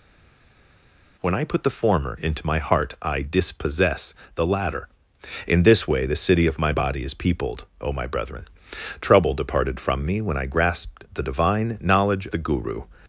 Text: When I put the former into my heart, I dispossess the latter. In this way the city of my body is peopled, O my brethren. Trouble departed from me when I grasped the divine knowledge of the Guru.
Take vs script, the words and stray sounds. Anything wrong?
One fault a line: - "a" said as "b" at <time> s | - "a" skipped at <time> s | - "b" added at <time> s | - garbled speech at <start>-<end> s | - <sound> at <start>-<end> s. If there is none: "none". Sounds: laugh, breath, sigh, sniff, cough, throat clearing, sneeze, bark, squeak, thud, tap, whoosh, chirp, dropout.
- "of" skipped at 12.3 s